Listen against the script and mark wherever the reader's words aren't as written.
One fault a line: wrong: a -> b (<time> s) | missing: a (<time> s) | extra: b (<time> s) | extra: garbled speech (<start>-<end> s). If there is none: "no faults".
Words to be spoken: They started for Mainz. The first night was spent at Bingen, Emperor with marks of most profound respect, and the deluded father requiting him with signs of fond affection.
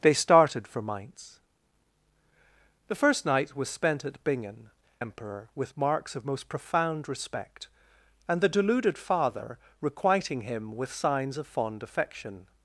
no faults